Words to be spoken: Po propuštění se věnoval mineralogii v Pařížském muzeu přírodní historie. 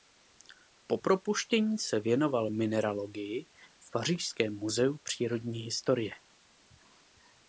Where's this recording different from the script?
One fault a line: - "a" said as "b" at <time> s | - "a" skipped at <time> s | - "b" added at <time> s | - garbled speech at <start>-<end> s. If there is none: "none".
none